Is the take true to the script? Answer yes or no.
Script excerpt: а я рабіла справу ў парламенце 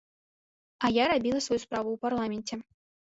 no